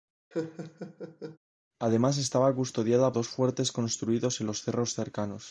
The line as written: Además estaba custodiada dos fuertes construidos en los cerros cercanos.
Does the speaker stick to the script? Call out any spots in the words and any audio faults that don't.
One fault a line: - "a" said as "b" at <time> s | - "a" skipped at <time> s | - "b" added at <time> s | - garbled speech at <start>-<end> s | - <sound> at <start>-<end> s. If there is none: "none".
- laugh at 0.3-1.4 s